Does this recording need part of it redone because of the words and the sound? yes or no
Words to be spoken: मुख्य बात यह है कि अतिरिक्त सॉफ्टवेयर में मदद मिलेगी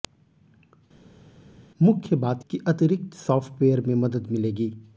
yes